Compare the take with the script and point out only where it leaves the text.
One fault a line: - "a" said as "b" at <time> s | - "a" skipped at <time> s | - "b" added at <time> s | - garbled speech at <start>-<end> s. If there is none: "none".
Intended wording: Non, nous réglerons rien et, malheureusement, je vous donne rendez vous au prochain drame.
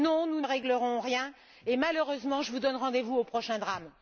none